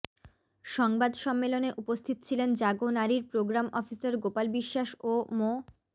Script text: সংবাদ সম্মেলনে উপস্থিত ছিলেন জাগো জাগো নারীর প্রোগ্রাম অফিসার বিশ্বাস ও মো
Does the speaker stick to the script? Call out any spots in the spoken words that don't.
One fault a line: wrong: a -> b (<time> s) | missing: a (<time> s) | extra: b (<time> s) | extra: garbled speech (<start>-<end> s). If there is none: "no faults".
missing: জাগো (2.9 s)
extra: গোপাল (4.2 s)